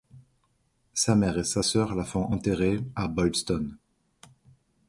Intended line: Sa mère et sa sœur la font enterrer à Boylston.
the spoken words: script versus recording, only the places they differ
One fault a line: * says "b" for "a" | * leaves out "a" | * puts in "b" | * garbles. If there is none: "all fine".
all fine